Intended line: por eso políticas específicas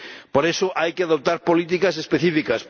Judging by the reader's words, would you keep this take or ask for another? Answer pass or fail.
fail